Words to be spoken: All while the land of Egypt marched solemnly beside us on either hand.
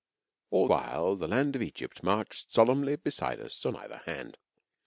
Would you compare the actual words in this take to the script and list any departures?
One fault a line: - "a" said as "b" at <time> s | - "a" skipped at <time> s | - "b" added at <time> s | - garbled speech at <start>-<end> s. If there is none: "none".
none